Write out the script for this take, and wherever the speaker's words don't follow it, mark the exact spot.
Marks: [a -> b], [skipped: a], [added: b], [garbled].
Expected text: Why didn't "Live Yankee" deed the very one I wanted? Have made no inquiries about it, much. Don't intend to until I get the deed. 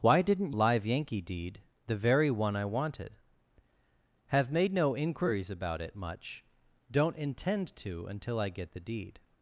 Why didn't "Live Yankee" deed the very one I wanted? Have made no inquiries about it, much. Don't intend to until I get the deed.